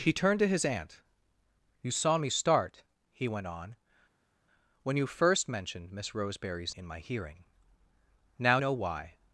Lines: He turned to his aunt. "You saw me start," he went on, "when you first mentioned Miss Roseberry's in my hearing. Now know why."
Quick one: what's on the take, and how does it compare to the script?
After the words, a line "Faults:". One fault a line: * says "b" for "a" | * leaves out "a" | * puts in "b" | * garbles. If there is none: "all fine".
He turned to his aunt. "You saw me start," he went on, "when you first mentioned Miss Roseberry's in my hearing. Now know why."
Faults:
all fine